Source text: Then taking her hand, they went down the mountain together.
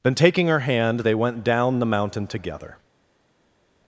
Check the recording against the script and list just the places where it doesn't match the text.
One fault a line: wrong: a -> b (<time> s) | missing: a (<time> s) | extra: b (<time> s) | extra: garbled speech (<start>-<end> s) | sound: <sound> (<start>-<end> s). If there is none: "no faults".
no faults